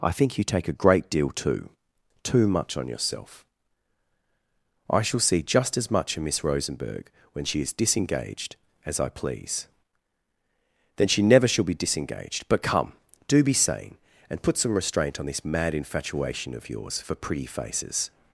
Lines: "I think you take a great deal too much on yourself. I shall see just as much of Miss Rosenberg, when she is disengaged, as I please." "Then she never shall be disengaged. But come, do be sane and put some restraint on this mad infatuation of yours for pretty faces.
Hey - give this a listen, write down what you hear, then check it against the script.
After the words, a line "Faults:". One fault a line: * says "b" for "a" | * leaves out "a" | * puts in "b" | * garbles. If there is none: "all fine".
"I think you take a great deal too too much on yourself. I shall see just as much of Miss Rosenberg, when she is disengaged, as I please." "Then she never shall be disengaged. But come, do be sane and put some restraint on this mad infatuation of yours for pretty faces.
Faults:
* puts in "too"